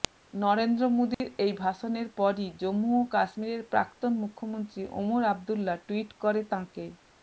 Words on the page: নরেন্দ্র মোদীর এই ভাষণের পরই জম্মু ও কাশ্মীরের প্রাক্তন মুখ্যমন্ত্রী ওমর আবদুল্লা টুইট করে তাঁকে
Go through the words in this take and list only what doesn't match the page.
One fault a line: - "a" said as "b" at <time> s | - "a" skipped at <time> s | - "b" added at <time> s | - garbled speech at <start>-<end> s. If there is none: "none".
none